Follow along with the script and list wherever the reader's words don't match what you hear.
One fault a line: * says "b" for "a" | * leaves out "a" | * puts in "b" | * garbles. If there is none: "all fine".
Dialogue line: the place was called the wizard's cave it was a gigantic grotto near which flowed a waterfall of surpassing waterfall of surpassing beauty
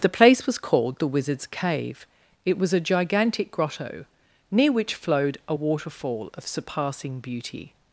* leaves out "waterfall of surpassing"